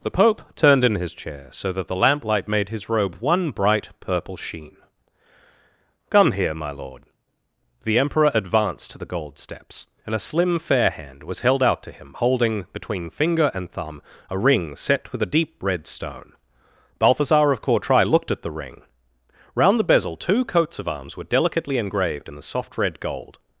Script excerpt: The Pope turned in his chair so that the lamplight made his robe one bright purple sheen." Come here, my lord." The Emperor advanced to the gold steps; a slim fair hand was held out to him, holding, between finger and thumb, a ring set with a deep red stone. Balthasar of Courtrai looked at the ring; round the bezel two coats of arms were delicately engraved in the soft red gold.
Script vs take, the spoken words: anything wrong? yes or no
yes